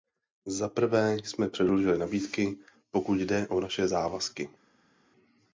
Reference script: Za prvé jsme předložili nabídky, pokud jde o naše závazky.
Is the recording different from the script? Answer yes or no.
no